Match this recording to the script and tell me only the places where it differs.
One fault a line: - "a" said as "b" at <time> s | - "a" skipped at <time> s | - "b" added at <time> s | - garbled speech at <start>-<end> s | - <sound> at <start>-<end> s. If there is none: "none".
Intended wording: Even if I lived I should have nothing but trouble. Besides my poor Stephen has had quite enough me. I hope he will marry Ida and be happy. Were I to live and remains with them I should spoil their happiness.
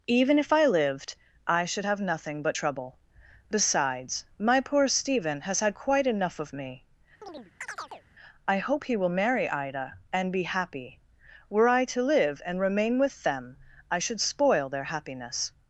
- "of" added at 6.4 s
- chirp at 7.2-8.0 s
- "remains" said as "remain" at 12.6 s